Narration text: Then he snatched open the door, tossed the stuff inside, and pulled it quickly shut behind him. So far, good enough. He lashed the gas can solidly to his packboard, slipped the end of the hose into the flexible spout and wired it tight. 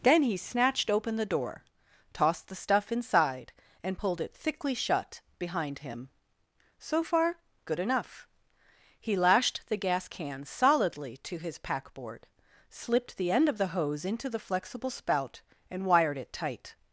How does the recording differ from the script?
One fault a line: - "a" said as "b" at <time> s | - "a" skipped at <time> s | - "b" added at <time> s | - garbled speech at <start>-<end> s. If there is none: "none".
- "quickly" said as "thickly" at 4.3 s